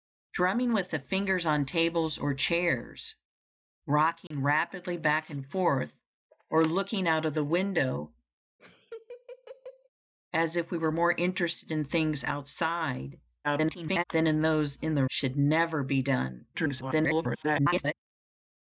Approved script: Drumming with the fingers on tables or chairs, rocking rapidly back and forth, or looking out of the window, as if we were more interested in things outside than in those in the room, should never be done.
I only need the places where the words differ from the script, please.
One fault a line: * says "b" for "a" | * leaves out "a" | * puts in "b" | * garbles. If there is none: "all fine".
* garbles
* leaves out "room"
* garbles